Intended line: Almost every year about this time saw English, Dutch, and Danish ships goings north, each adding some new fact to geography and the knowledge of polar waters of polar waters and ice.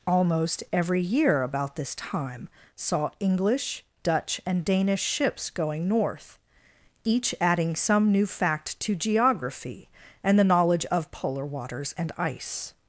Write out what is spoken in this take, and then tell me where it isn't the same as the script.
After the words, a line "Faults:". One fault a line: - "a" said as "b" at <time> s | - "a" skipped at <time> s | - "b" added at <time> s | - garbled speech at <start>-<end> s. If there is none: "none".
Almost every year about this time saw English, Dutch, and Danish ships going north, each adding some new fact to geography and the knowledge of polar waters and ice.
Faults:
- "goings" said as "going" at 5.5 s
- "of polar waters" skipped at 11.9 s